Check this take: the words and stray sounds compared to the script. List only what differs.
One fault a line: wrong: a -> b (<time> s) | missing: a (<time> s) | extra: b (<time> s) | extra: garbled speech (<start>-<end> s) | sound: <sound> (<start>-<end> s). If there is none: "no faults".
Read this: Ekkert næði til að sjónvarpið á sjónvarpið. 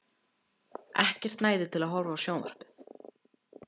wrong: sjónvarpið -> horfa (2.0 s)